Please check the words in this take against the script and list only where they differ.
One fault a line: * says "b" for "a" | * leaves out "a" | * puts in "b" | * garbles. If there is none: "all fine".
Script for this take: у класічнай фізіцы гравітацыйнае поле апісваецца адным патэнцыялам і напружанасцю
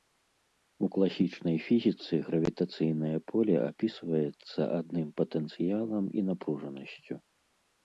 all fine